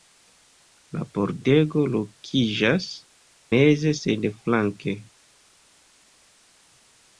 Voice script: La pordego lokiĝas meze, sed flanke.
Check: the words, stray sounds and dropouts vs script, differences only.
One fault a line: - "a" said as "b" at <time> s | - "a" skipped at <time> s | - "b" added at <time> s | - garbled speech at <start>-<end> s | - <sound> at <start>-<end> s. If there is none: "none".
none